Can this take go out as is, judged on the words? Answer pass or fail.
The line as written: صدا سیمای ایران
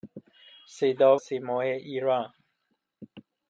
pass